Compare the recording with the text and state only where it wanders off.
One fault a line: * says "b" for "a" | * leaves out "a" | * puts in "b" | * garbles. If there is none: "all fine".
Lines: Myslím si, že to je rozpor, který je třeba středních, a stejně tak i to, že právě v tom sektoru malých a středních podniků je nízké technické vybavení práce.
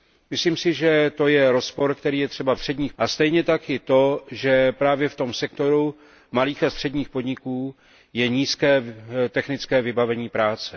all fine